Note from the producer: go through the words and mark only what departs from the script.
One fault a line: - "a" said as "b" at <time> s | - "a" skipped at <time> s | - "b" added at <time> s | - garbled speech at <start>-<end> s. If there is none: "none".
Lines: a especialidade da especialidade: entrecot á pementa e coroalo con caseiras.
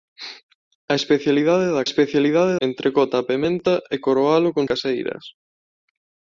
none